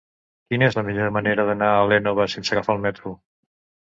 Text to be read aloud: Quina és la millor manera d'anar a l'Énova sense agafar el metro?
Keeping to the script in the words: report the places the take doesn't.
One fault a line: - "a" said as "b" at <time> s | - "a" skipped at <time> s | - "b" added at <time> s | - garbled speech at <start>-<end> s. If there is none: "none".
none